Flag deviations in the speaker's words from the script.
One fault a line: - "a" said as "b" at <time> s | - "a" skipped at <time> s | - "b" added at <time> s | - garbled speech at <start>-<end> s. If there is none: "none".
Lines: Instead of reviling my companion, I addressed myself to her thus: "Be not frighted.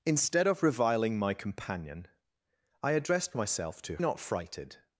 - "her thus Be" skipped at 4.0 s